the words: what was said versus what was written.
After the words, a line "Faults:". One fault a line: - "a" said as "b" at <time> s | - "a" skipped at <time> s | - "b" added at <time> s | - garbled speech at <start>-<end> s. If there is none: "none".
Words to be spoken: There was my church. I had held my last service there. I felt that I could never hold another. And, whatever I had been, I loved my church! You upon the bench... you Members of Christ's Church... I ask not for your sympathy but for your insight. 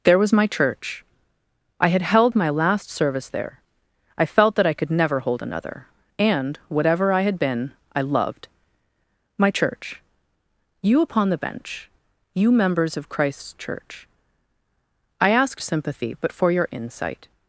There was my church. I had held my last service there. I felt that I could never hold another. And, whatever I had been, I loved my church! You upon the bench... you Members of Christ's Church... I ask sympathy but for your insight.
Faults:
- "not for your" skipped at 15.6 s